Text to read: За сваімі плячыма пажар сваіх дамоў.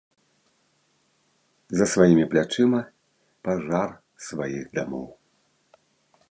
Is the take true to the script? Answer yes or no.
yes